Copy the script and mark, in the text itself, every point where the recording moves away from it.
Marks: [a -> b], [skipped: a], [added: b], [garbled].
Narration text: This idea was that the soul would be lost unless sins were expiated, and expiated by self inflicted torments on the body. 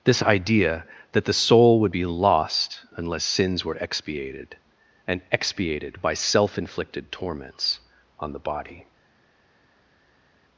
This idea [skipped: was] that the soul would be lost unless sins were expiated, and expiated by self inflicted torments on the body.